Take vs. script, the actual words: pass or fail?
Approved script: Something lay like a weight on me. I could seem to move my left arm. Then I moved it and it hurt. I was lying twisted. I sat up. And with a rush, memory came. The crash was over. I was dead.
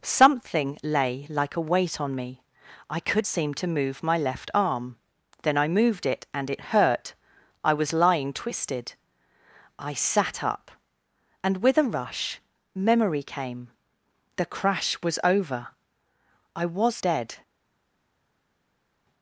pass